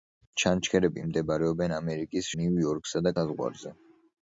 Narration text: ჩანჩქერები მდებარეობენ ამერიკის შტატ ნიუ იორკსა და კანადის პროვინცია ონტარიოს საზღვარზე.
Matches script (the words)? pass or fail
fail